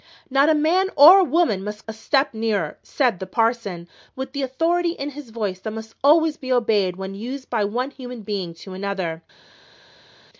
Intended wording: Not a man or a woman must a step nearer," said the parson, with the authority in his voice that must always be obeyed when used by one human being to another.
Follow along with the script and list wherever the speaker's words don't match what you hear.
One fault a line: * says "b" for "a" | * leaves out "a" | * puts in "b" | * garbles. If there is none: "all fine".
all fine